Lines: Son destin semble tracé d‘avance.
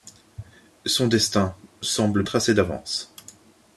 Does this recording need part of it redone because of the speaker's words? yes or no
no